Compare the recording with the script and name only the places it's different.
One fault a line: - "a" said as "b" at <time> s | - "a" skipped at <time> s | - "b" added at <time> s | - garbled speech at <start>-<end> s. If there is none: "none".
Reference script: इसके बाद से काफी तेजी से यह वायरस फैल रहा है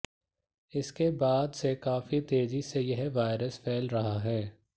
none